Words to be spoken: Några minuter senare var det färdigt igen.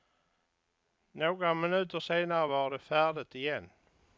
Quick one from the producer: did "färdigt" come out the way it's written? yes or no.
yes